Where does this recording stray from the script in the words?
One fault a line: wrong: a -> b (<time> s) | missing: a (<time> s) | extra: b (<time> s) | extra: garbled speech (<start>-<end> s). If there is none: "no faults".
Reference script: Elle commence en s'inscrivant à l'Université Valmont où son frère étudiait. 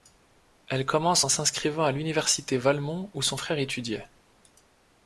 no faults